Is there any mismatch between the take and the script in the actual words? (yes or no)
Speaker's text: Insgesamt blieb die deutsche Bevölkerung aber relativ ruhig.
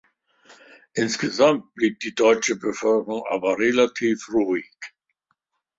no